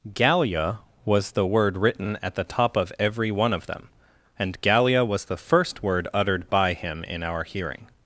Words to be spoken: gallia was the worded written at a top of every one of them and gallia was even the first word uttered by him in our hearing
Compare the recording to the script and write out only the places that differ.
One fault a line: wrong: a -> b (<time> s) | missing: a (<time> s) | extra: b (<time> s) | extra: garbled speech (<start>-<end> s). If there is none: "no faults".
wrong: worded -> word (1.4 s)
wrong: a -> the (2.3 s)
missing: even (5.2 s)